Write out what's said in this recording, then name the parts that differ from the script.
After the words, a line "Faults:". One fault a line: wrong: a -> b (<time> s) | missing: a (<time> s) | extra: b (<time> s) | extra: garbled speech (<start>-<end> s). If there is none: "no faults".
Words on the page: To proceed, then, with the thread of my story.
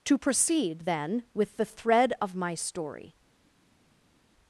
To proceed, then, with the thread of my story.
Faults:
no faults